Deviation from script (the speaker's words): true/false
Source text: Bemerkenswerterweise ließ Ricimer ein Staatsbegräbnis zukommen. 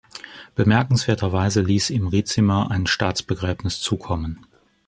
true